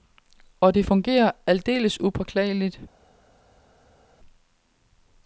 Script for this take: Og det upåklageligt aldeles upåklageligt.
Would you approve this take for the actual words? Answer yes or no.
no